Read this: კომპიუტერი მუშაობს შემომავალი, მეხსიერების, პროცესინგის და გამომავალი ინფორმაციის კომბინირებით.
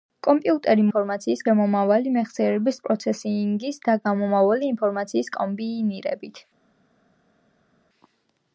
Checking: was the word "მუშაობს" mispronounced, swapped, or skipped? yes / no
yes